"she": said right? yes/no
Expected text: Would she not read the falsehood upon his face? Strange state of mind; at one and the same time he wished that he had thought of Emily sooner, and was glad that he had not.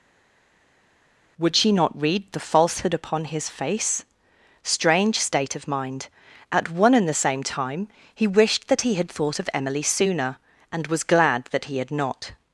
yes